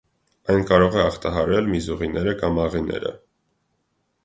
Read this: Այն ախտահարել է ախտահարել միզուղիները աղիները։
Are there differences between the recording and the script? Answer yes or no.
yes